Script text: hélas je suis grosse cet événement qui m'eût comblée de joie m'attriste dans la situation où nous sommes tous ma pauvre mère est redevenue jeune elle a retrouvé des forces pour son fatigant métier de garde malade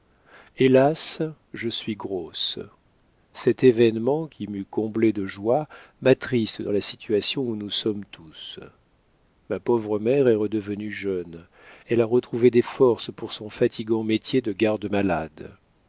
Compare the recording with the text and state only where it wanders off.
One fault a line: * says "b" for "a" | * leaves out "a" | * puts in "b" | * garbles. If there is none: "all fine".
all fine